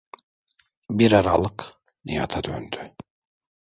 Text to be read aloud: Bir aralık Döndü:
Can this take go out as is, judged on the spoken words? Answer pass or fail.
fail